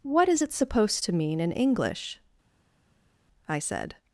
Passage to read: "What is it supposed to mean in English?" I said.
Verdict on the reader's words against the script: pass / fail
pass